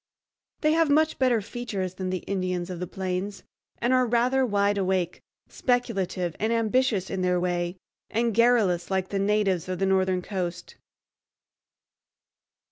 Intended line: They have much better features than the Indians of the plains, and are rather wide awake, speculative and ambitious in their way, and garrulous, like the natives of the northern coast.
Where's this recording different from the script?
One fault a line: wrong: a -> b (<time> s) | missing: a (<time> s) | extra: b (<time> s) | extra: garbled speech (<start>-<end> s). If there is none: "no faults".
no faults